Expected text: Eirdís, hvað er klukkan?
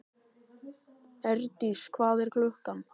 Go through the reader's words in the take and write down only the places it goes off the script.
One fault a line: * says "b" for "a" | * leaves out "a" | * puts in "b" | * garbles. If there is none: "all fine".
all fine